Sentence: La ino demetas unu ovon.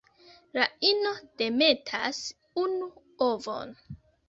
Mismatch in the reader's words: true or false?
false